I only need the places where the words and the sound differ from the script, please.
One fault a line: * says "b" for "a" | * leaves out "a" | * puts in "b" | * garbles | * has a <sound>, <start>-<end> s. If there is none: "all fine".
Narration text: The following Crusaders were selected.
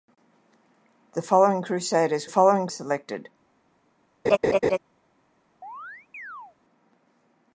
* says "following" for "were"
* has a laugh, 4.2-4.8 s
* has a chirp, 5.6-6.6 s